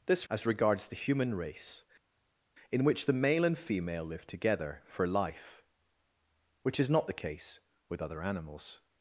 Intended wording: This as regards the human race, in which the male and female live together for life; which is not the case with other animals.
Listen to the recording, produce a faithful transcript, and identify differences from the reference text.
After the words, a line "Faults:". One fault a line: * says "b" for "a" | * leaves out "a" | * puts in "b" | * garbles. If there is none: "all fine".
This as regards the human race, in which the male and female live together for life; which is not the case with other animals.
Faults:
all fine